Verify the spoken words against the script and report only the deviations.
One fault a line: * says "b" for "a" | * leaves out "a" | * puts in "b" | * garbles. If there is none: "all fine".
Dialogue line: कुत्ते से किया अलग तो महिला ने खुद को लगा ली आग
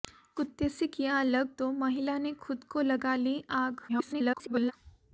* garbles